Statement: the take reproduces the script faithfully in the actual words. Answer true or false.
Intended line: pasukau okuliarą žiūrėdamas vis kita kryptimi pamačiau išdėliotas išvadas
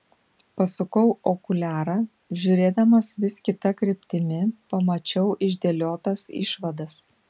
true